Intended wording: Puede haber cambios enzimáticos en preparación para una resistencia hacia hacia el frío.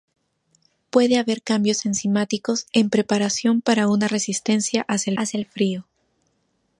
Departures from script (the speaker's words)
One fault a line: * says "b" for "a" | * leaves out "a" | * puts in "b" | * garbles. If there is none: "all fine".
all fine